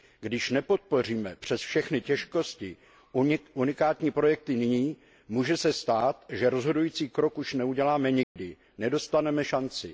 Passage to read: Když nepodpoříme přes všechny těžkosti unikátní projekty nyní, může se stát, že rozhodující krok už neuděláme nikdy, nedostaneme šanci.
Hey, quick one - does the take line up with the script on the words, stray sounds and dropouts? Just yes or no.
no